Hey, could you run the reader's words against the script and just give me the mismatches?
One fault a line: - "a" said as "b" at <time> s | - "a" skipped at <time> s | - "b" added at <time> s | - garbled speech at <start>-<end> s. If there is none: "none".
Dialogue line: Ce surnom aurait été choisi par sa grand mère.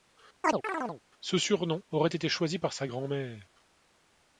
none